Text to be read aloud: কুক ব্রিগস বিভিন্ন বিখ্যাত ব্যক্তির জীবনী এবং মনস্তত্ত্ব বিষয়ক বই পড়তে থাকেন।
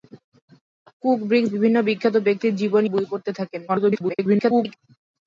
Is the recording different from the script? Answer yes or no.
yes